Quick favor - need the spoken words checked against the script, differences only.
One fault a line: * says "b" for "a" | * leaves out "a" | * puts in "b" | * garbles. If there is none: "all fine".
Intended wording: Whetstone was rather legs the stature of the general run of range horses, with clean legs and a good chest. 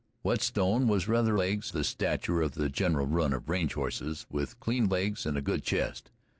all fine